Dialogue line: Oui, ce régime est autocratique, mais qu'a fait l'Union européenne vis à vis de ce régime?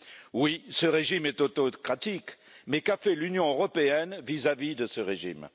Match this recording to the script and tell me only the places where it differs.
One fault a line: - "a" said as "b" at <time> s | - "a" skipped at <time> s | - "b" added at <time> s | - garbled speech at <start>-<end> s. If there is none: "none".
none